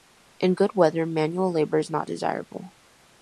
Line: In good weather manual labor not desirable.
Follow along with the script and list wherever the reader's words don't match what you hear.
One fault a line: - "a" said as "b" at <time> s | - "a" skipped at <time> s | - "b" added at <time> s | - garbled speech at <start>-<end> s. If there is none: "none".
- "is" added at 1.8 s